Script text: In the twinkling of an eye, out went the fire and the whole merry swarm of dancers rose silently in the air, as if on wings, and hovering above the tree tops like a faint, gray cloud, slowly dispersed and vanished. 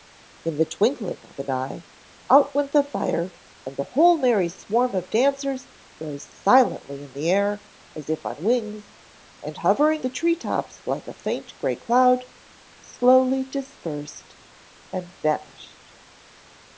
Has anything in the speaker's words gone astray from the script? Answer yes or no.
yes